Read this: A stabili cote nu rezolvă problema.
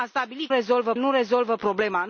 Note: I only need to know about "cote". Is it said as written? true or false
false